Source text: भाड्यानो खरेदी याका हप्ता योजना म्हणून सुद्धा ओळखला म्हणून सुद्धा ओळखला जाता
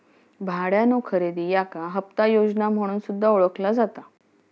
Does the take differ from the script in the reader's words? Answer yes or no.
yes